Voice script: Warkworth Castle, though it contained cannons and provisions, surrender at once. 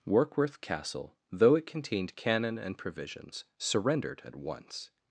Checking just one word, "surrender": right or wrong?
wrong